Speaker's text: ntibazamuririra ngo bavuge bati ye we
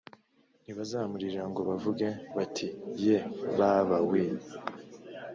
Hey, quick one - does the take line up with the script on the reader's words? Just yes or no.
no